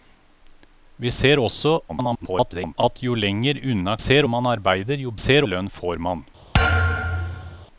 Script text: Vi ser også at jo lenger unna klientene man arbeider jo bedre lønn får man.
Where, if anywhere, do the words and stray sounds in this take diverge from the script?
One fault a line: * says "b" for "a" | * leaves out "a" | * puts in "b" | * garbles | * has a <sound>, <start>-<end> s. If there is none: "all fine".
* garbles
* says "ser" for "klientene"
* says "ser" for "bedre"
* has a thud, 6.5-7.7 s